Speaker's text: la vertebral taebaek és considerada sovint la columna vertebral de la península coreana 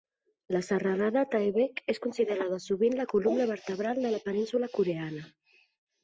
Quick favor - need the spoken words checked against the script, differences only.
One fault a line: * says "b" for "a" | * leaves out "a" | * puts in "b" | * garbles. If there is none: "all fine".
* says "serralada" for "vertebral"